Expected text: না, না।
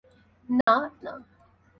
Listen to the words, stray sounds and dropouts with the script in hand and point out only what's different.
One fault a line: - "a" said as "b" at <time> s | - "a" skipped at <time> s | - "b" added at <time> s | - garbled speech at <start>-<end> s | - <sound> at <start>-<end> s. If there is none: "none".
- dropout at 0.6-0.7 s